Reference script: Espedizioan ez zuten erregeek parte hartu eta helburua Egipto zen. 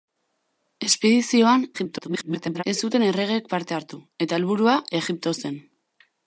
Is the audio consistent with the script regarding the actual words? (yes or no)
no